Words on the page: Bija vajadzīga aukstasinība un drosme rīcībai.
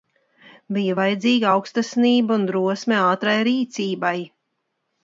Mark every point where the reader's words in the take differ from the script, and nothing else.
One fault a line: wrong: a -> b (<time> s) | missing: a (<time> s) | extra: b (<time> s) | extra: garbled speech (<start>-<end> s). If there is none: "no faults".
extra: ātrai (3.1 s)